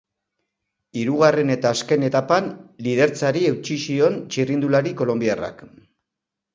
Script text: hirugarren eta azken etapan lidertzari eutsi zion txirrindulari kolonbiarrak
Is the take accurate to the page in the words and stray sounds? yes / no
yes